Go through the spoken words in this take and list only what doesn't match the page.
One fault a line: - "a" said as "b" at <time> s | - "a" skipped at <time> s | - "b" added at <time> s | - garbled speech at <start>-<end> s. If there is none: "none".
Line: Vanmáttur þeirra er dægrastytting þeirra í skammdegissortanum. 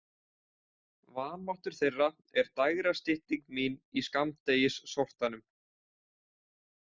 - "þeirra" said as "mín" at 3.6 s